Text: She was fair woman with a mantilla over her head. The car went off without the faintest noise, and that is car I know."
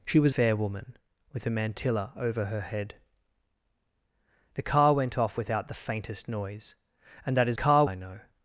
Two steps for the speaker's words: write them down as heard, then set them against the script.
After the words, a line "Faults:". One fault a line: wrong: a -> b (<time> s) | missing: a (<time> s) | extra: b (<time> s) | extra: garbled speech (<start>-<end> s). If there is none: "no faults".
She was fair woman with a mantilla over her head. The car went off without the faintest noise, and that is car I know."
Faults:
no faults